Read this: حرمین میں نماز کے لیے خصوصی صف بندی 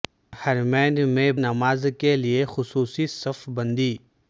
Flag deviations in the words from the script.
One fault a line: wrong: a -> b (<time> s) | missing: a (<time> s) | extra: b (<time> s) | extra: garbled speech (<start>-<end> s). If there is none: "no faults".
no faults